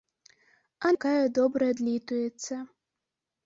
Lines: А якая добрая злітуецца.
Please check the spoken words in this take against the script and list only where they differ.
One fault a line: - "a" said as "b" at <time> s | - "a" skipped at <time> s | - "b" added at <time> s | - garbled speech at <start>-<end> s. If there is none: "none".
none